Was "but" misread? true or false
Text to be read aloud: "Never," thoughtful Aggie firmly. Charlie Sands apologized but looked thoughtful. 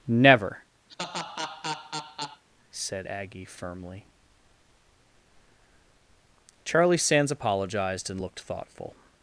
true